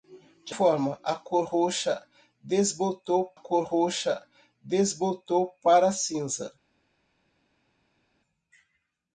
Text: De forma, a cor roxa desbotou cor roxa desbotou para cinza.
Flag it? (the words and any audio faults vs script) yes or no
no